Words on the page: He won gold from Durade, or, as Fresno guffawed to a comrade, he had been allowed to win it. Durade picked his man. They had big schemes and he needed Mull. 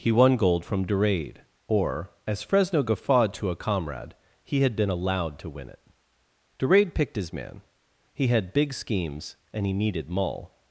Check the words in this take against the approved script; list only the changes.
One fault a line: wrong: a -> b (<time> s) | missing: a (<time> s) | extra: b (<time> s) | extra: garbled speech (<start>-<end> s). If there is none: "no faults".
wrong: They -> He (8.1 s)